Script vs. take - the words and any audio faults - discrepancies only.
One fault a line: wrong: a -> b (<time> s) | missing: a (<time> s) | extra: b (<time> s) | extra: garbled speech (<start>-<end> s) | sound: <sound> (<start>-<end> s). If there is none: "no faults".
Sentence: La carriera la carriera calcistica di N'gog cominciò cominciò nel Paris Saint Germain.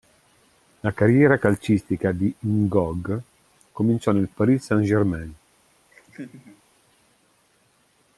missing: la carriera (1.4 s)
missing: cominciò (4.1 s)
sound: laugh (5.9-6.6 s)